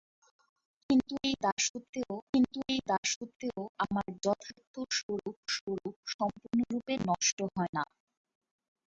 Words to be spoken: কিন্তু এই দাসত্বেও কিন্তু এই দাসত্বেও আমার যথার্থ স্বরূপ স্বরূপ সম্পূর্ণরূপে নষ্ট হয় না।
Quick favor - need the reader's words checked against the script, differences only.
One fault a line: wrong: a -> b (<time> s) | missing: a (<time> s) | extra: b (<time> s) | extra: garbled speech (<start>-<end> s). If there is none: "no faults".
no faults